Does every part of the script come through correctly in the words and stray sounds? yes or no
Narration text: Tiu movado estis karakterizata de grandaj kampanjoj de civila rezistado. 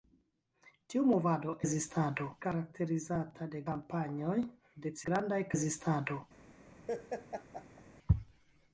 no